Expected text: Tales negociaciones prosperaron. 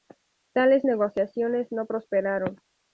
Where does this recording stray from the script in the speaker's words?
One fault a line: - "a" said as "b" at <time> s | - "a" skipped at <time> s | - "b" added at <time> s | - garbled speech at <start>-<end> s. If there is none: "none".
- "no" added at 1.7 s